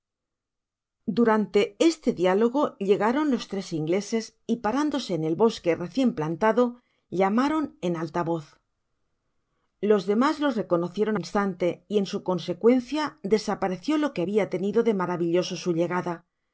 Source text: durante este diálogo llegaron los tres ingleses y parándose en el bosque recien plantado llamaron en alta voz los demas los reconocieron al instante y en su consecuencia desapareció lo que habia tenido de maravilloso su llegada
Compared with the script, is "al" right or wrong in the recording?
wrong